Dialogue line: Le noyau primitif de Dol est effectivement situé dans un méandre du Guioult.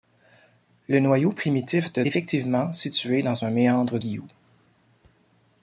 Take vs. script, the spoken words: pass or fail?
fail